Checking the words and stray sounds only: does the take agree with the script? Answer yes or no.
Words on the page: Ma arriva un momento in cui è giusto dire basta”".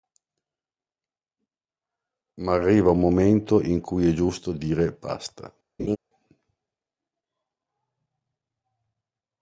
no